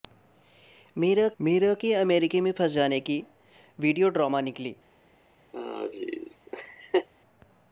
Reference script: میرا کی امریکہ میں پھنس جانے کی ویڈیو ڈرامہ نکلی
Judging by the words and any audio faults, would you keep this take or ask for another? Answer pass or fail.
fail